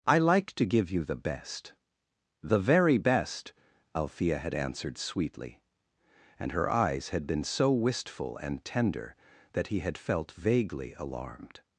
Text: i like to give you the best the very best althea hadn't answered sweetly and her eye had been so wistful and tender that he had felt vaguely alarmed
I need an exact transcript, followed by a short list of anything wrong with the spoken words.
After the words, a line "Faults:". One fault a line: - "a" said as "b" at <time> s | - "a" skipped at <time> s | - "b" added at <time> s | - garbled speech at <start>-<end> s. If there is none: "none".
i like to give you the best the very best althea had answered sweetly and her eyes had been so wistful and tender that he had felt vaguely alarmed
Faults:
- "hadn't" said as "had" at 4.4 s
- "eye" said as "eyes" at 6.7 s